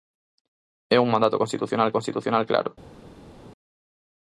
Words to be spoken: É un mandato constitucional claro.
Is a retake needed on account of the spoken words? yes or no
yes